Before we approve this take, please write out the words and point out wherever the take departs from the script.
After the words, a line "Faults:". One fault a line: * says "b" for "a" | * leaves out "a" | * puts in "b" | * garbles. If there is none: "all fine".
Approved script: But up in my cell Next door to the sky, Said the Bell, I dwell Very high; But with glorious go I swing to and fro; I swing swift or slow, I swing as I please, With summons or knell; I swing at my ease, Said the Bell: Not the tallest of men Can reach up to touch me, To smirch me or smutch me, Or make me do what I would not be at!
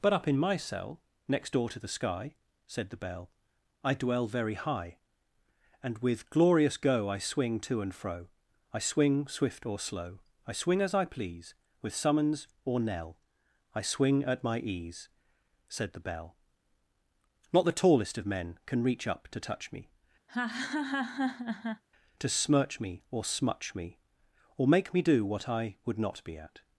But up in my cell Next door to the sky, Said the Bell, I dwell Very high; And with glorious go I swing to and fro; I swing swift or slow, I swing as I please, With summons or knell; I swing at my ease, Said the Bell: Not the tallest of men Can reach up to touch me, To smirch me or smutch me, Or make me do what I would not be at!
Faults:
* says "And" for "But"